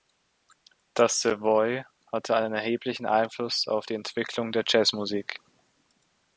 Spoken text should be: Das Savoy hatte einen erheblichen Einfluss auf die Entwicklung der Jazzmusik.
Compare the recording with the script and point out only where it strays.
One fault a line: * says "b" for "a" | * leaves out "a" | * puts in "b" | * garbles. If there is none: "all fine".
all fine